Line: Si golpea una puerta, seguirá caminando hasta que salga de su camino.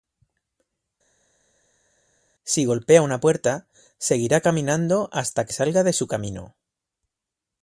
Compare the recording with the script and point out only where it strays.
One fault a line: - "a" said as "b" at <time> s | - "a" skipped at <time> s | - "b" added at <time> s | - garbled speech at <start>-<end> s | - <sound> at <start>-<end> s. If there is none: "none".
none